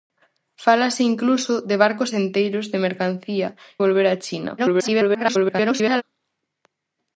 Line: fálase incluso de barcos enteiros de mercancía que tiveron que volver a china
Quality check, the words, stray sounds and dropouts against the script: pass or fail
fail